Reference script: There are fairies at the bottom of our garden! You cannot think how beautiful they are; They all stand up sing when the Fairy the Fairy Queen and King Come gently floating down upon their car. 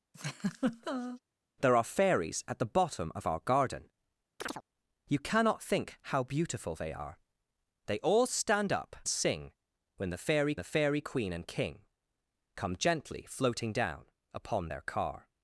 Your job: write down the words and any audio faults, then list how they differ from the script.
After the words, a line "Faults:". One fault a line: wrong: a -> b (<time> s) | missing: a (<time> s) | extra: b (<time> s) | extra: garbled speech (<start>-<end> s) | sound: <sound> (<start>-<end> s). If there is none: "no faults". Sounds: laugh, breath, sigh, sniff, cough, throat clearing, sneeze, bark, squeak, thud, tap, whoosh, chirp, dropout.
There are fairies at the bottom of our garden! You cannot think how beautiful they are; They all stand up sing when the Fairy the Fairy Queen and King Come gently floating down upon their car.
Faults:
sound: laugh (0.1-1.2 s)
sound: chirp (4.4-4.6 s)